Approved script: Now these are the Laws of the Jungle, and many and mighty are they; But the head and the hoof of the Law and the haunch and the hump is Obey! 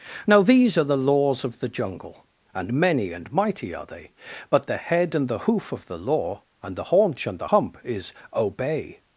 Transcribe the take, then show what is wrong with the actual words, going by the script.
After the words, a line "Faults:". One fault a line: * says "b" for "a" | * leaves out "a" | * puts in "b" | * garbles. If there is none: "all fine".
Now these are the Laws of the Jungle, and many and mighty are they; But the head and the hoof of the Law and the haunch and the hump is Obey!
Faults:
all fine